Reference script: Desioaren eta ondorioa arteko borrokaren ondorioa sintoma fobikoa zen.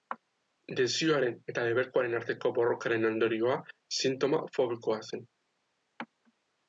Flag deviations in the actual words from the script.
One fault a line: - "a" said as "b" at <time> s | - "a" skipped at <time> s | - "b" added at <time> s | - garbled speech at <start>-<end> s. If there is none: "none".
- "ondorioa" said as "debekuaren" at 1.7 s